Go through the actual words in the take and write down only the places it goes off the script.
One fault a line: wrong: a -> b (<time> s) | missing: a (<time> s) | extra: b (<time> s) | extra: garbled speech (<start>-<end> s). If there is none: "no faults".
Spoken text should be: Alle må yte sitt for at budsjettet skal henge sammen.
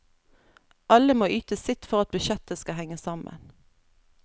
no faults